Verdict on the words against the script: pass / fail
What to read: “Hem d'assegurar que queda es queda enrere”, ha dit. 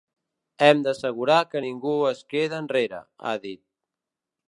fail